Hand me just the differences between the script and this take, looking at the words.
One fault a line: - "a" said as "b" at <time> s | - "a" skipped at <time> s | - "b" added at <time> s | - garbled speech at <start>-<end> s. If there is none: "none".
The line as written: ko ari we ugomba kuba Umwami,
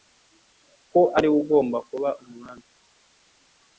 none